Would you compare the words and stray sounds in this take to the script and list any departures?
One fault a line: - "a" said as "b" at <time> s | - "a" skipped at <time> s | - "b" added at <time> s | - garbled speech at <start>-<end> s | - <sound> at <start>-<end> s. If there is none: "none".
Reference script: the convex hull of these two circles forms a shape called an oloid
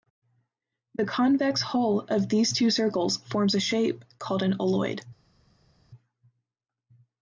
none